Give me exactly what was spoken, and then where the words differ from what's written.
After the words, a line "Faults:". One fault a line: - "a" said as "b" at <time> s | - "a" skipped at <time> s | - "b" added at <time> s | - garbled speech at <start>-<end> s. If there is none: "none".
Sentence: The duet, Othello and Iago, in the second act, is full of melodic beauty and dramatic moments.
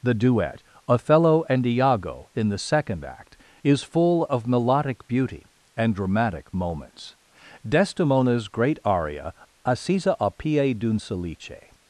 The duet, Othello and Iago, in the second act, is full of melodic beauty and dramatic moments. Desdemona's great aria, "Assisa a pie d'un salice
Faults:
- "Desdemona's great aria Assisa a pie d'un salice" added at 7.7 s